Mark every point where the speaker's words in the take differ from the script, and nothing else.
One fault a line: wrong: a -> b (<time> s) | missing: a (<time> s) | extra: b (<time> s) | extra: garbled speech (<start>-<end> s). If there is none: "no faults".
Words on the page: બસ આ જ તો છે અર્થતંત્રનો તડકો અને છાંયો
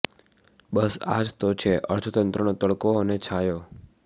no faults